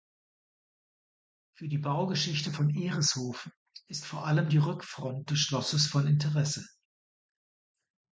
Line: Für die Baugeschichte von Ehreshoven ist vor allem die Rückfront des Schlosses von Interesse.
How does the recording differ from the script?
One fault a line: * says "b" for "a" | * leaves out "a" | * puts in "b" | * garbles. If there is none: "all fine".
all fine